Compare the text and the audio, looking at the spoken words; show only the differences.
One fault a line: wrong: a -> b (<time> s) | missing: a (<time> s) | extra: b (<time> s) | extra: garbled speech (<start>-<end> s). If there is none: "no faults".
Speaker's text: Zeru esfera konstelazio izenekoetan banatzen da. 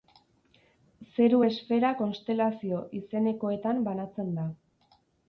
no faults